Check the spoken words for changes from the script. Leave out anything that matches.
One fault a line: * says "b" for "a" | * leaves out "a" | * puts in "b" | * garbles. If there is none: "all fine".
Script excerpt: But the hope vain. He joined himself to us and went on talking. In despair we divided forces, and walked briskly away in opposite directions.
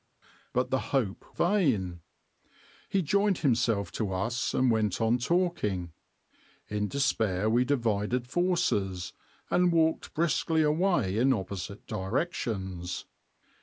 all fine